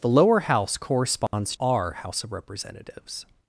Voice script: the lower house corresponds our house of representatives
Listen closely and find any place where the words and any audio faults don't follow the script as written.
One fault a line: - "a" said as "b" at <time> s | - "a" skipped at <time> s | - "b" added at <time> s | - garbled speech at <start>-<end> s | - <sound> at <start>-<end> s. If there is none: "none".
- dropout at 1.3-1.3 s